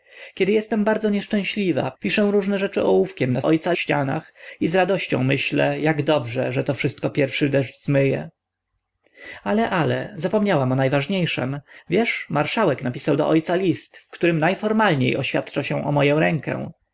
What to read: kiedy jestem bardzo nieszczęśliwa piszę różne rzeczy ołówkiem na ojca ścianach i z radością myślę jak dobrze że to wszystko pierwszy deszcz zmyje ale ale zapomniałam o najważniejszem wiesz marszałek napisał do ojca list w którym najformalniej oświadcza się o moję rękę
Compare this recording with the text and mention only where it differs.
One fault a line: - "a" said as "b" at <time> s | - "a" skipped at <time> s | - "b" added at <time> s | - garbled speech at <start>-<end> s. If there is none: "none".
none